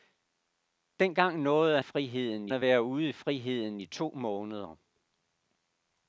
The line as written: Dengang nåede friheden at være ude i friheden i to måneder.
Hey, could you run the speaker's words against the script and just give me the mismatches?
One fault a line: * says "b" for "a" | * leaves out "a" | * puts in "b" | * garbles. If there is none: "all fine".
all fine